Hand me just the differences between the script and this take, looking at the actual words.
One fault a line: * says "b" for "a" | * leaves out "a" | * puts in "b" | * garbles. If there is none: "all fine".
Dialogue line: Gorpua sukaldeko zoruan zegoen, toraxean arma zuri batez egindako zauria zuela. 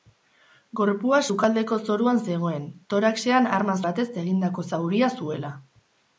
* leaves out "zuri"